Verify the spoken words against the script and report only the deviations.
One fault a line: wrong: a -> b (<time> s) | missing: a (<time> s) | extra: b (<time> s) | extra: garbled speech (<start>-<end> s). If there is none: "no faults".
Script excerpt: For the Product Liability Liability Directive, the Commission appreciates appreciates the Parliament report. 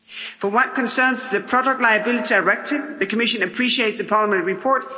extra: what concerns (0.5 s)
missing: Liability (2.3 s)
missing: appreciates (4.0 s)